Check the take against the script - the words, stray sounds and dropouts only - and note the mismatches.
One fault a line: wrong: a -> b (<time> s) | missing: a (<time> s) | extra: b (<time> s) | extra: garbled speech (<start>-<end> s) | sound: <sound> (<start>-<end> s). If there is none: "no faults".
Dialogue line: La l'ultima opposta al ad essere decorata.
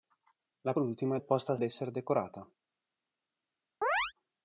sound: chirp (3.8-4.1 s)